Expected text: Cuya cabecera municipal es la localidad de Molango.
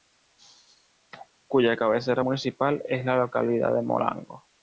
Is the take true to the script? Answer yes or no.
yes